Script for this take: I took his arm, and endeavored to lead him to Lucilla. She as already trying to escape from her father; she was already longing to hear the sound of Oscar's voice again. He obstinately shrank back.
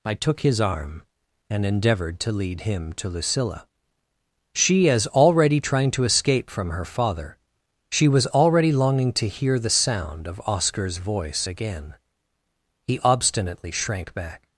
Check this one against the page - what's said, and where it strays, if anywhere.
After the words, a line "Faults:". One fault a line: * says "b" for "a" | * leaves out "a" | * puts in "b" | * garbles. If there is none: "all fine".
I took his arm, and endeavored to lead him to Lucilla. She as already trying to escape from her father; she was already longing to hear the sound of Oscar's voice again. He obstinately shrank back.
Faults:
all fine